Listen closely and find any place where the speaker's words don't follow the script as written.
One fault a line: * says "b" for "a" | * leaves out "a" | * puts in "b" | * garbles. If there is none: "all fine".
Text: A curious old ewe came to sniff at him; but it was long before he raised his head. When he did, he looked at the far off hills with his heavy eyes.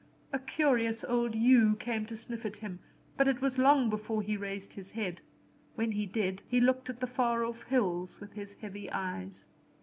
all fine